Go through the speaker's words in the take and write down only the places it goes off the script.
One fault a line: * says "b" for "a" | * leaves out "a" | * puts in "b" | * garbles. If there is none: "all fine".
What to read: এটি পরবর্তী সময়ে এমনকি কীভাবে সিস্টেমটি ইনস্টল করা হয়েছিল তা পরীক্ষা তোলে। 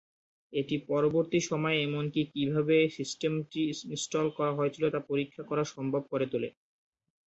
* puts in "করা সম্ভব করে"